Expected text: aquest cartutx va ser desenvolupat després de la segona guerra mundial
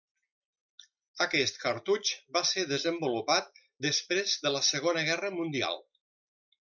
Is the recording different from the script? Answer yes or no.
no